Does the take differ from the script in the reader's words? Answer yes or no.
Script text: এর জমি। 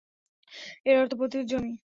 yes